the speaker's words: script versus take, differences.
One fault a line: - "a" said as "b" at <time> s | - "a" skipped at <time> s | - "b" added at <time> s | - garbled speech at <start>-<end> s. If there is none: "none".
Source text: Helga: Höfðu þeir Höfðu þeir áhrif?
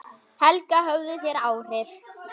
- "Höfðu þeir" skipped at 1.4 s